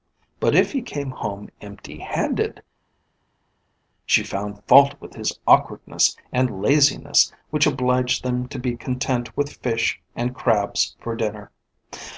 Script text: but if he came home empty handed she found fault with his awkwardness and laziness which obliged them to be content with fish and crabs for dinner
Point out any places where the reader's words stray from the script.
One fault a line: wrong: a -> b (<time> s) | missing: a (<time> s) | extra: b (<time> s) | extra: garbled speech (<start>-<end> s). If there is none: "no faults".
no faults